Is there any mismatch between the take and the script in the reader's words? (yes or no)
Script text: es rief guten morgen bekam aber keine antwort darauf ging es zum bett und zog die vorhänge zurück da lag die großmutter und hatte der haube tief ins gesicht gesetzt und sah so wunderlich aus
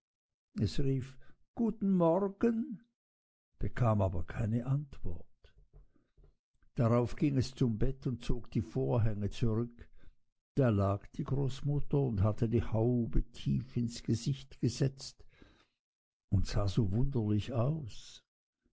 yes